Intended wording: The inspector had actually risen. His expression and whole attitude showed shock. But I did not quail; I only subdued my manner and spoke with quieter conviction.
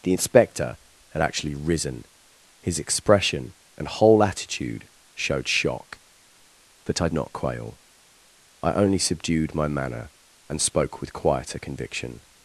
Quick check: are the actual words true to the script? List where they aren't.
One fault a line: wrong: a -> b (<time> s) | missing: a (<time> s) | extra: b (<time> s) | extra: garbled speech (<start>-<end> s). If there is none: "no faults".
missing: did (7.1 s)